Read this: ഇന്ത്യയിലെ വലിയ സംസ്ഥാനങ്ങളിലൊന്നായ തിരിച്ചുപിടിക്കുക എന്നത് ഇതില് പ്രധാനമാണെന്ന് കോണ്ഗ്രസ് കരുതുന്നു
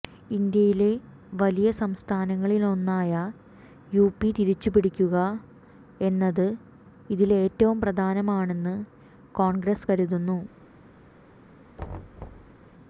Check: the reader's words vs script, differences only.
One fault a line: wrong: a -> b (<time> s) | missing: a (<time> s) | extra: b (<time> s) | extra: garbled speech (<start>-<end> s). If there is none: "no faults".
extra: യുപി (3.9 s)
extra: ഏറ്റവും (7.4 s)